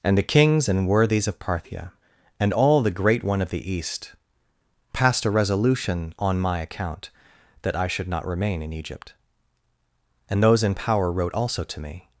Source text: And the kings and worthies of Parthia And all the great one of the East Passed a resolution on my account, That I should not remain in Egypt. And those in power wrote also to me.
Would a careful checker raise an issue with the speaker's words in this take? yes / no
no